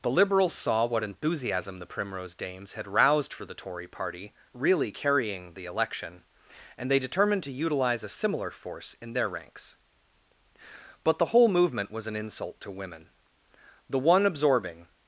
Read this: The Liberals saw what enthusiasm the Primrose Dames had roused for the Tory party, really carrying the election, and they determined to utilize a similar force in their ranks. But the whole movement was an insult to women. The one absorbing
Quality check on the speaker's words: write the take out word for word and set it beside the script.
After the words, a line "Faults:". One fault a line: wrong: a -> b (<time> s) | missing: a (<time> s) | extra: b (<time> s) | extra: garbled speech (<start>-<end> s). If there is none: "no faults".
The Liberals saw what enthusiasm the Primrose Dames had roused for the Tory party, really carrying the election, and they determined to utilize a similar force in their ranks. But the whole movement was an insult to women. The one absorbing
Faults:
no faults